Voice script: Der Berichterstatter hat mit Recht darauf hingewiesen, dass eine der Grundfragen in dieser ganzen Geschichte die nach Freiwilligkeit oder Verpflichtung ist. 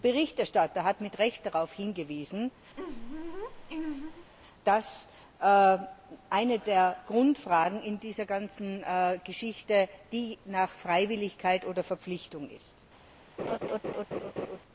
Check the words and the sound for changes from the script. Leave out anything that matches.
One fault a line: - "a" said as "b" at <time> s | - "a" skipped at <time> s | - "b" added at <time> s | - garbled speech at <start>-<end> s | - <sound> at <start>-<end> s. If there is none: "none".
- laugh at 2.7-4.3 s
- laugh at 13.4-14.6 s